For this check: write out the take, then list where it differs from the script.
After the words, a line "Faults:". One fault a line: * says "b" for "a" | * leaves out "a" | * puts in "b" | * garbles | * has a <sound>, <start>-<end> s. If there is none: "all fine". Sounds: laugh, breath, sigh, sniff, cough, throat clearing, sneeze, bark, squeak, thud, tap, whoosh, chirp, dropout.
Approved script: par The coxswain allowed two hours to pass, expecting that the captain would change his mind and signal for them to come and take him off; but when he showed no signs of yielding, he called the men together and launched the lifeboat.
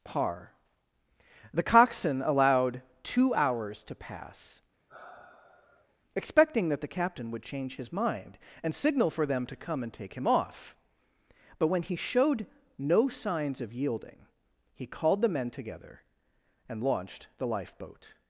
par The coxswain allowed two hours to pass, expecting that the captain would change his mind and signal for them to come and take him off; but when he showed no signs of yielding, he called the men together and launched the lifeboat.
Faults:
* has a sigh, 4.9-6.0 s